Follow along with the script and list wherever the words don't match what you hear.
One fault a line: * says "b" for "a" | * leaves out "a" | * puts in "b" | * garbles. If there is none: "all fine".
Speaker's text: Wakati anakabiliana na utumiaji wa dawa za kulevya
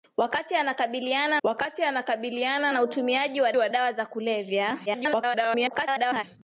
* puts in "wakati anakabiliana"
* puts in "wa"
* garbles